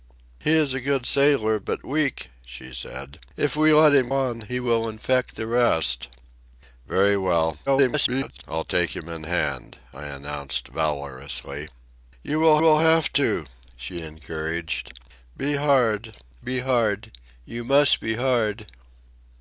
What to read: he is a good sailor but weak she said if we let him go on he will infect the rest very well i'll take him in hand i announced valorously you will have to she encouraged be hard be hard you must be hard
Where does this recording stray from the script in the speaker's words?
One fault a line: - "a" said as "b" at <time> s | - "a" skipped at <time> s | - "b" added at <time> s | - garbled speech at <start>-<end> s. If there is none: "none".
- "go" skipped at 4.1 s
- garbled speech at 7.7-8.4 s
- "will" added at 12.6 s